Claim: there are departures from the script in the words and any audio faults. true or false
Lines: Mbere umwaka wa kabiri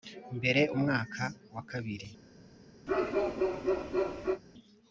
true